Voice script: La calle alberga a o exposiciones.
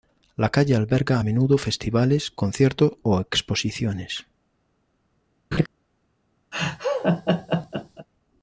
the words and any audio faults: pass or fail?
fail